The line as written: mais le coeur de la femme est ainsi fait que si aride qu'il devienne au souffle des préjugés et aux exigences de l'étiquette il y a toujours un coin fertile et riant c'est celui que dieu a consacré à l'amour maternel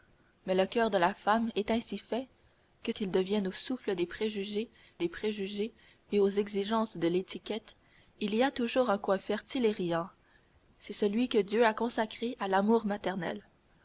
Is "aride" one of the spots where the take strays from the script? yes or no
yes